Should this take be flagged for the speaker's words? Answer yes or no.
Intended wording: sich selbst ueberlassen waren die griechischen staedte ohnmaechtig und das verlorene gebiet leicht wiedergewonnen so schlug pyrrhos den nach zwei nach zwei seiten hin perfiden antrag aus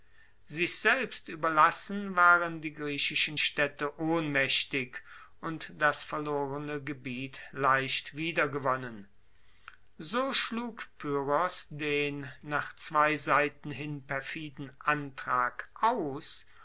yes